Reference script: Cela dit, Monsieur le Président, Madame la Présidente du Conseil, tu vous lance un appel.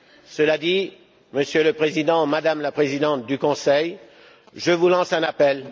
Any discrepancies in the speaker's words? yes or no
yes